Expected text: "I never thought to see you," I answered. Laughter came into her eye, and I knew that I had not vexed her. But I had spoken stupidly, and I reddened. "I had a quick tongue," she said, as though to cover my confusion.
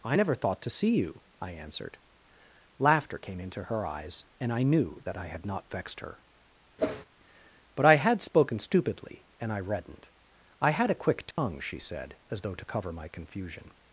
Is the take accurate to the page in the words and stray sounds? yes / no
no